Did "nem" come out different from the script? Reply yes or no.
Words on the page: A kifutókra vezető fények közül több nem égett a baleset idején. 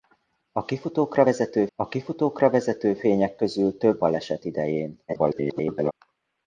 yes